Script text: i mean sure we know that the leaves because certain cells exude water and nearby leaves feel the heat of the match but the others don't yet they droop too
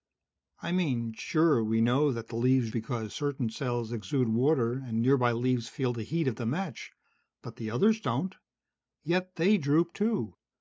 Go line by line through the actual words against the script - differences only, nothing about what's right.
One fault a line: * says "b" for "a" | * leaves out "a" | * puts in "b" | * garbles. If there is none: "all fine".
all fine